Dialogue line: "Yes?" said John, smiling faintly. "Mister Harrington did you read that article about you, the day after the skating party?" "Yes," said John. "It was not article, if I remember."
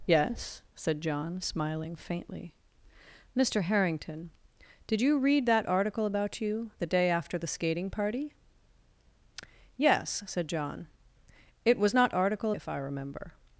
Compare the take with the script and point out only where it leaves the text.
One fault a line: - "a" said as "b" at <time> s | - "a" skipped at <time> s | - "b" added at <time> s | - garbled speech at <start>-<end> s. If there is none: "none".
none